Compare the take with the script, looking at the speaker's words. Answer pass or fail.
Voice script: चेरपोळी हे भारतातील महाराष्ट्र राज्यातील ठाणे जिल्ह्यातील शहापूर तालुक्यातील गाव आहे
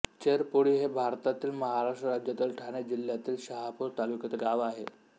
pass